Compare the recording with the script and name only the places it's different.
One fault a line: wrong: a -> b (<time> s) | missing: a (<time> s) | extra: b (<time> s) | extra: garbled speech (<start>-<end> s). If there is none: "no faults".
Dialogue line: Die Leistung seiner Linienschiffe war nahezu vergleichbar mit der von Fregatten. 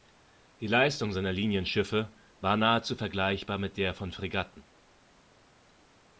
no faults